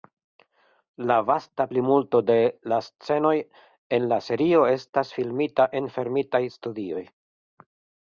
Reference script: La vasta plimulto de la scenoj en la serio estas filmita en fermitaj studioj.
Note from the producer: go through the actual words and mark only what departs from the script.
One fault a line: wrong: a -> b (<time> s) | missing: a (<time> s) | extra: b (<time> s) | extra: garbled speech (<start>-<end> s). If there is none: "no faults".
no faults